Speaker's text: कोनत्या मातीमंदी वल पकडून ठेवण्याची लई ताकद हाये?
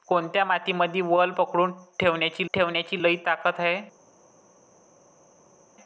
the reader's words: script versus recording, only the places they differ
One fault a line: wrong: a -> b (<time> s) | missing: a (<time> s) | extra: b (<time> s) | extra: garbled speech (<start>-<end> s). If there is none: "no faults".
extra: ठेवण्याची (2.5 s)